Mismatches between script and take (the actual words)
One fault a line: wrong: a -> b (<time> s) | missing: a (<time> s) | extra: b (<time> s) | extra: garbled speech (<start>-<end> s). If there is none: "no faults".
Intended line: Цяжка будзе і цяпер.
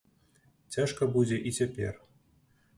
no faults